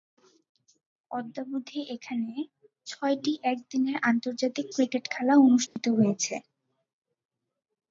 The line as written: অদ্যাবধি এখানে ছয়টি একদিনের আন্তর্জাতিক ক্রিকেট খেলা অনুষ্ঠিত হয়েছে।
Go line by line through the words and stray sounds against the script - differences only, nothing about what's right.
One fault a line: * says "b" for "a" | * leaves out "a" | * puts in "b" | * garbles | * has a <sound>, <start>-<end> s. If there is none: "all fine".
* has a dropout, 5.7-5.8 s